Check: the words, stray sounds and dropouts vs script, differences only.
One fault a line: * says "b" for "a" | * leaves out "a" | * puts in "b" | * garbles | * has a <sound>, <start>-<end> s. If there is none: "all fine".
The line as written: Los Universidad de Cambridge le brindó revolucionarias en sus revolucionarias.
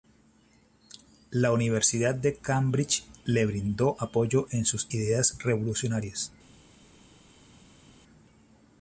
* says "La" for "Los"
* says "apoyo" for "revolucionarias"
* puts in "ideas"